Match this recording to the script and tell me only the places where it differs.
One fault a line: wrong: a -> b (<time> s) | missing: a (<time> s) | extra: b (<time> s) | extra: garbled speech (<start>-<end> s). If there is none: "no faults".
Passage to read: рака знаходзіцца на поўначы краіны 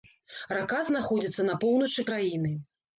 no faults